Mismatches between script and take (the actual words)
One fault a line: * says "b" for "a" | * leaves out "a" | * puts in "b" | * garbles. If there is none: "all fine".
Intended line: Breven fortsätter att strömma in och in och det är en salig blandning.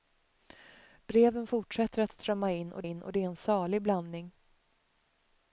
all fine